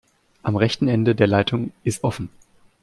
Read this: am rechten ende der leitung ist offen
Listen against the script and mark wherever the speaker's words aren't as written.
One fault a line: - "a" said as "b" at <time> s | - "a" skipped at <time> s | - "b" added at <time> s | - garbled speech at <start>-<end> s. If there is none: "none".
none